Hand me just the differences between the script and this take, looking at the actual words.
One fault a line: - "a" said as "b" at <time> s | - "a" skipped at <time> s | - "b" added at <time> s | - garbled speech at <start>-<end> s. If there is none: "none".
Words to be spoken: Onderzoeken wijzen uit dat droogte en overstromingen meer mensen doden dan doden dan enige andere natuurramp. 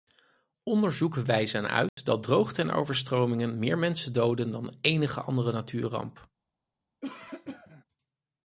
- "doden dan" skipped at 4.8 s